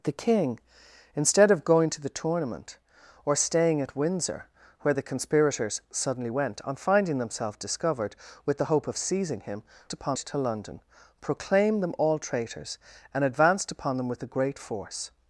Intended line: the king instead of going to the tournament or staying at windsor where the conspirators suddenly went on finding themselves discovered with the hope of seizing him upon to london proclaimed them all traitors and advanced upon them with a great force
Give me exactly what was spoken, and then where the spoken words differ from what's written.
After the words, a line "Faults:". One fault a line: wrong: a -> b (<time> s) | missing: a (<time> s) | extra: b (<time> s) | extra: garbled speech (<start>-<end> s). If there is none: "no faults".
the king instead of going to the tournament or staying at windsor where the conspirators suddenly went on finding themselves discovered with the hope of seizing him upon to london proclaimed them all traitors and advanced upon them with a great force
Faults:
no faults